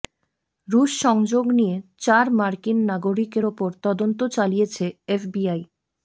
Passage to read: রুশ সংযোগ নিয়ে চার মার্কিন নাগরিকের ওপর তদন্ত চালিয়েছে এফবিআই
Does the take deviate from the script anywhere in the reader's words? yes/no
no